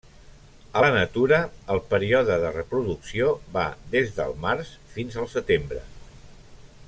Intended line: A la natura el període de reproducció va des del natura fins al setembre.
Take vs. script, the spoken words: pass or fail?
fail